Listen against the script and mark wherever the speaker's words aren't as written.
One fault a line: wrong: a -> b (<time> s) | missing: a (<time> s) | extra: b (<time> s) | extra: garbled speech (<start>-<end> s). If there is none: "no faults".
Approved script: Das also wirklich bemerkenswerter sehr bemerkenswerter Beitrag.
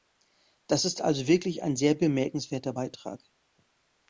extra: ist (0.8 s)
wrong: bemerkenswerter -> ein (1.6 s)